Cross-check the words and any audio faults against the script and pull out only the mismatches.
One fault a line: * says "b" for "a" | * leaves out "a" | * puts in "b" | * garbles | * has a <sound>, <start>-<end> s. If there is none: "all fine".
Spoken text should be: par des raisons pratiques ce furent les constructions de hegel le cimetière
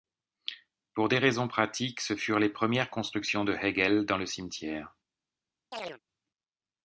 * says "pour" for "par"
* puts in "premières"
* puts in "dans"
* has a chirp, 5.7-6.0 s